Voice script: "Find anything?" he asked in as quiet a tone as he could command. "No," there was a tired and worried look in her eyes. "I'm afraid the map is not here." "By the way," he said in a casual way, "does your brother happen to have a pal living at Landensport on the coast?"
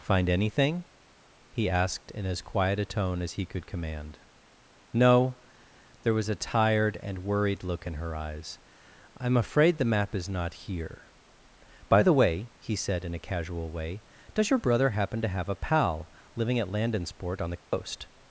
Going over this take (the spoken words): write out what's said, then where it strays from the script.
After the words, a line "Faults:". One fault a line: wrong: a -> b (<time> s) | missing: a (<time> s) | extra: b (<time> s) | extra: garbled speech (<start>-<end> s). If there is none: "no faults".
"Find anything?" he asked in as quiet a tone as he could command. "No," there was a tired and worried look in her eyes. "I'm afraid the map is not here." "By the way," he said in a casual way, "does your brother happen to have a pal living at Landensport on the coast?"
Faults:
no faults